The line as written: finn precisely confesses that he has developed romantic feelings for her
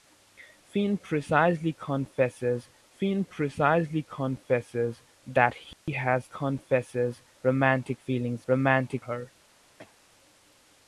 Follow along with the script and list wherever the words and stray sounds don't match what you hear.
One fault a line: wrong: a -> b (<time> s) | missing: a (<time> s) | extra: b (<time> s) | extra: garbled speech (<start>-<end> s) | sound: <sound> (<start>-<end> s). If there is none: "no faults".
extra: finn precisely confesses (2.9 s)
sound: dropout (5.7-5.9 s)
wrong: developed -> confesses (6.3 s)
wrong: for -> romantic (8.5 s)
sound: cough (9.8-10.0 s)